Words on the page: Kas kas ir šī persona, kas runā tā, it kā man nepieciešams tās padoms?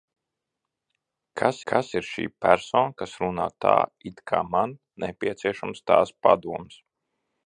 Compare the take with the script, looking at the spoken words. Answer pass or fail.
pass